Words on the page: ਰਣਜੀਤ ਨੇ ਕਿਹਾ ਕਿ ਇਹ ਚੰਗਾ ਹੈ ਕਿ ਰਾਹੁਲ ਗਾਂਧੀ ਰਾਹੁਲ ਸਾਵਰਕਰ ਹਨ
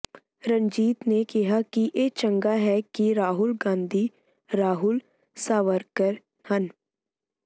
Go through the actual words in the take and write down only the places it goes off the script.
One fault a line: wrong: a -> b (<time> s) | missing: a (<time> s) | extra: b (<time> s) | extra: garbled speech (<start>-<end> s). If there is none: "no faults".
no faults